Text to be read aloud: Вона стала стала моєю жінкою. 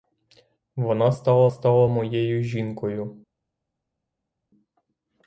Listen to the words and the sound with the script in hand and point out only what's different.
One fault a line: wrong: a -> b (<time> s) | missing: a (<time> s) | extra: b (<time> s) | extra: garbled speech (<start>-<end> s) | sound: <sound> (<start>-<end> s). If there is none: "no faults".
no faults